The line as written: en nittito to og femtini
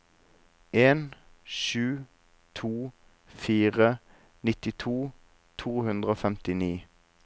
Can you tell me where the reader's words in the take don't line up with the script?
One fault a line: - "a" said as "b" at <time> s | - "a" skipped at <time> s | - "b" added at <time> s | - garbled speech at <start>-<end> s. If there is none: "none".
- "sju to fire" added at 1.4 s
- "hundre" added at 5.8 s